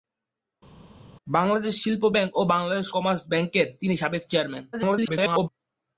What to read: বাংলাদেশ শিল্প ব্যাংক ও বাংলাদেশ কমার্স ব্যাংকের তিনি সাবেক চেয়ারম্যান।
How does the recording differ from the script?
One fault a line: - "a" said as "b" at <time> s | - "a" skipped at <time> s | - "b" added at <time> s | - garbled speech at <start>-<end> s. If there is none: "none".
- garbled speech at 4.7-5.5 s